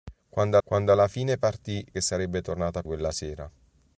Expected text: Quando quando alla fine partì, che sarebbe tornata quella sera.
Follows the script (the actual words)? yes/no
yes